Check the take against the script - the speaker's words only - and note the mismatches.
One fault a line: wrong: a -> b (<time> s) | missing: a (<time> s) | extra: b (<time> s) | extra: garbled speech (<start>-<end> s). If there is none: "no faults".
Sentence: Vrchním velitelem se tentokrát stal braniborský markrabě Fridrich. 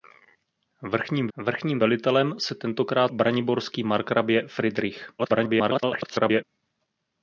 extra: vrchním (1.4 s)
missing: stal (3.1 s)
extra: garbled speech (5.2-6.4 s)